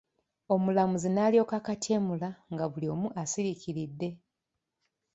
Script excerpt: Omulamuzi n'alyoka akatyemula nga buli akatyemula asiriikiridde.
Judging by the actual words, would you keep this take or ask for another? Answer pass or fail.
fail